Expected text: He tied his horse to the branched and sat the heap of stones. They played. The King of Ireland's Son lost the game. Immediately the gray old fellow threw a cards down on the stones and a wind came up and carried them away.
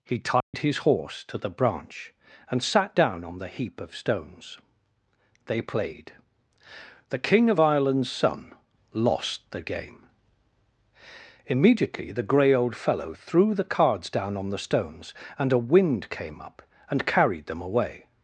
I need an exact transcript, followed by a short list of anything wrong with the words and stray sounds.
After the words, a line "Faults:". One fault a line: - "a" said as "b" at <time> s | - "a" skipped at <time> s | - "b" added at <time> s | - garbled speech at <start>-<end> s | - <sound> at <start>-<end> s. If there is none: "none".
He tied his horse to the branch and sat down on the heap of stones. They played. The King of Ireland's Son lost the game. Immediately the gray old fellow threw the cards down on the stones and a wind came up and carried them away.
Faults:
- dropout at 0.4-0.5 s
- "branched" said as "branch" at 1.5 s
- "down on" added at 3.0 s
- "a" said as "the" at 13.5 s